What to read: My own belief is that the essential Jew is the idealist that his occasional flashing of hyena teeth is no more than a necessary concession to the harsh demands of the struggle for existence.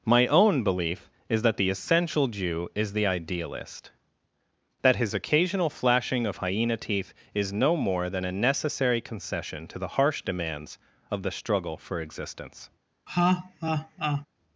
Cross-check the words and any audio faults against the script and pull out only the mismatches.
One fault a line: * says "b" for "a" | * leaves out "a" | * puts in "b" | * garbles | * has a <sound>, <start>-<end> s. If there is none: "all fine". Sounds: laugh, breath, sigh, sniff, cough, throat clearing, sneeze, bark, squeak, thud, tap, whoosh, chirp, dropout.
* has a laugh, 13.1-14.3 s